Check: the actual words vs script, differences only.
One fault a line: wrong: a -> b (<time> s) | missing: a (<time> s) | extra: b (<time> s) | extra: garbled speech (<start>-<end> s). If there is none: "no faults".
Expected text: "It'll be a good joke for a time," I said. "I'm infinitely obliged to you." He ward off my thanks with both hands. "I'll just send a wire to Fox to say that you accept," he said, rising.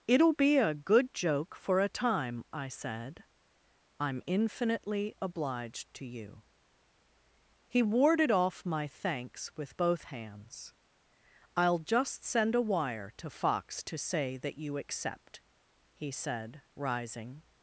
wrong: ward -> warded (7.8 s)